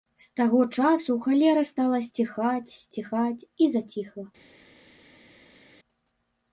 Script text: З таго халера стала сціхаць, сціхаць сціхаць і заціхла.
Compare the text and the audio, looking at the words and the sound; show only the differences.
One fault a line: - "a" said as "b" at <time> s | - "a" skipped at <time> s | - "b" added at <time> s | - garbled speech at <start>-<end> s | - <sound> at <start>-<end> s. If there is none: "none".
- "часу" added at 0.8 s
- "сціхаць" skipped at 3.5 s